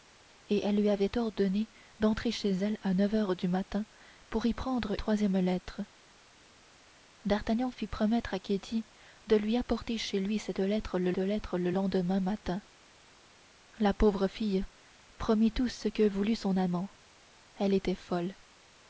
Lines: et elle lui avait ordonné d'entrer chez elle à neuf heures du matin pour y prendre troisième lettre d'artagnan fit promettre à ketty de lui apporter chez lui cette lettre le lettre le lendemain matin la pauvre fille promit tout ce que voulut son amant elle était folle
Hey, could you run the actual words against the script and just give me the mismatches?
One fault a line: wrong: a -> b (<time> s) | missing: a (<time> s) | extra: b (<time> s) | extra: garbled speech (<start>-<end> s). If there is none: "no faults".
no faults